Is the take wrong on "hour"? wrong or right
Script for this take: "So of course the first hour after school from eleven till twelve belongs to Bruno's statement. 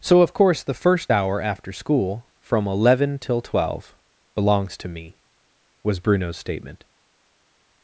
right